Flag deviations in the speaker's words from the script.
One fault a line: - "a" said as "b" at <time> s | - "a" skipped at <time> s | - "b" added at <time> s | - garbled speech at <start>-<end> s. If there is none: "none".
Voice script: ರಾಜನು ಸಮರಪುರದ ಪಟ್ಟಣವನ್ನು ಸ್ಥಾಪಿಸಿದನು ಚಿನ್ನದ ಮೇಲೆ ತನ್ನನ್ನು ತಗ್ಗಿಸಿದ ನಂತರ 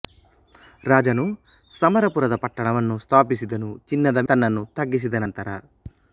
- "ಮೇಲೆ" skipped at 4.2 s